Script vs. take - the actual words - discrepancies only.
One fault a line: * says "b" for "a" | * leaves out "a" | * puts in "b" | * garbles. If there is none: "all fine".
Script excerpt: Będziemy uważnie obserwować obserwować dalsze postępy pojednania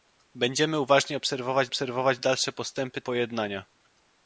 all fine